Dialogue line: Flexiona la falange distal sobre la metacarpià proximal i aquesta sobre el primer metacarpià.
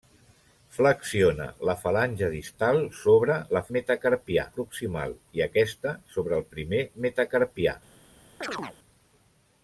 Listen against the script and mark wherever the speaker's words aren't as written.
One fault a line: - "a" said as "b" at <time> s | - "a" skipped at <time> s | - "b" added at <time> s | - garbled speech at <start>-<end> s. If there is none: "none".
none